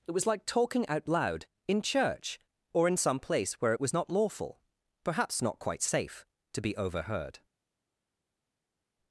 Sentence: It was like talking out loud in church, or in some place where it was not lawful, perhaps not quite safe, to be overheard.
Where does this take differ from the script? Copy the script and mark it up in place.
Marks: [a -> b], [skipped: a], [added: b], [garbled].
It was like talking out loud in church, or in some place where it was not lawful, perhaps not quite safe, to be overheard.